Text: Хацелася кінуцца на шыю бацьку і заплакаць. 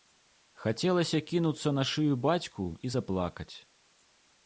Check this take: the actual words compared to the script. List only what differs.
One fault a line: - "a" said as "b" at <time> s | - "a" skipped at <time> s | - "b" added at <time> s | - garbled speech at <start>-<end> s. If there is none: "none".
none